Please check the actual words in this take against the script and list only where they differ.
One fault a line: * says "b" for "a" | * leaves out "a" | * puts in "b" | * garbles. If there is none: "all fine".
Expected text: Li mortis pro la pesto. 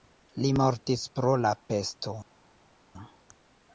all fine